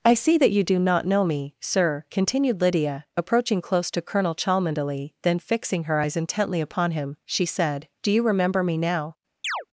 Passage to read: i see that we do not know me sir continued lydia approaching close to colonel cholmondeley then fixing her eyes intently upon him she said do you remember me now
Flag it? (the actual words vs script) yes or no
yes